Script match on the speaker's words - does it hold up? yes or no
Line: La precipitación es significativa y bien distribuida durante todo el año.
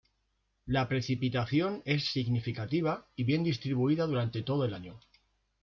yes